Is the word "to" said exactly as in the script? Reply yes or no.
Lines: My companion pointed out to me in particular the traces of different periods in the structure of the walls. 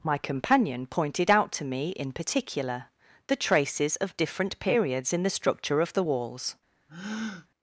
yes